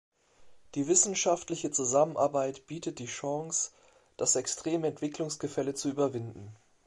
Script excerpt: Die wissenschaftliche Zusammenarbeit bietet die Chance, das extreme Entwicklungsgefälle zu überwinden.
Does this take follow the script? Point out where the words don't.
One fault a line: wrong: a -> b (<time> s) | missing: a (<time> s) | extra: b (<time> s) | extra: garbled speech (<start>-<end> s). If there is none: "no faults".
no faults